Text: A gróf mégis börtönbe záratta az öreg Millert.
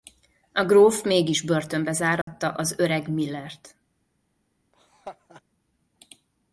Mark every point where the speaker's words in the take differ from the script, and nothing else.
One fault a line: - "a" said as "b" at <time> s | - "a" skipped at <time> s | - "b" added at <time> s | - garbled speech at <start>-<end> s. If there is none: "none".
none